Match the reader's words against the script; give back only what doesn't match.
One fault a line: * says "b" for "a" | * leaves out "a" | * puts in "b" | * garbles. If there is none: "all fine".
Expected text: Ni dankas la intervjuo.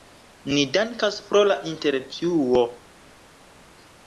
* puts in "pro"